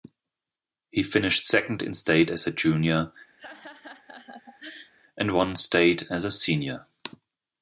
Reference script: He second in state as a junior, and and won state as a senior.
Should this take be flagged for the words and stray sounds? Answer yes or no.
yes